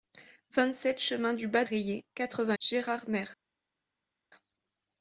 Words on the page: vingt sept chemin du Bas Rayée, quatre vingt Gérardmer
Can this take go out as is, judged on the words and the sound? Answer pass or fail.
pass